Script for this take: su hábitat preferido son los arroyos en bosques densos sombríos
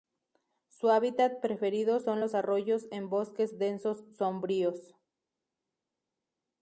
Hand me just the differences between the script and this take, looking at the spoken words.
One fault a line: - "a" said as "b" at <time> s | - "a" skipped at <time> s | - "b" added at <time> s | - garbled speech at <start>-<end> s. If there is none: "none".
none